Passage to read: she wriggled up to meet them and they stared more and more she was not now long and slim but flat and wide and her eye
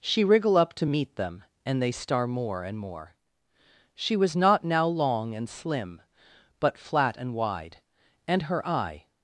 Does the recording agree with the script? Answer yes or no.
no